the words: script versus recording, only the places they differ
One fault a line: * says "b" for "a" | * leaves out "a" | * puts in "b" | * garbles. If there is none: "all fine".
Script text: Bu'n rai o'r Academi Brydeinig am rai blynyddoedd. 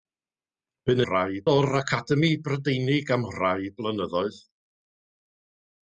all fine